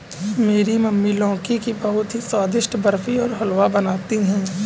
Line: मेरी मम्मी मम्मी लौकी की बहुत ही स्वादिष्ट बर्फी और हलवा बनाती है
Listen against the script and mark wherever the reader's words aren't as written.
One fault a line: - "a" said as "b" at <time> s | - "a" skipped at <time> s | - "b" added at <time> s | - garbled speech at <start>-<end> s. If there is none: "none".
- "मम्मी" skipped at 1.1 s